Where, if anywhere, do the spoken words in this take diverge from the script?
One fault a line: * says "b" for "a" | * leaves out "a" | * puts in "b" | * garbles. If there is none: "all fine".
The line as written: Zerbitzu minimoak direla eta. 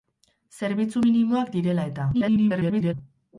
* garbles